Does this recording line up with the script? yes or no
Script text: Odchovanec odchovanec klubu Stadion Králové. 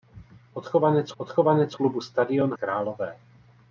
yes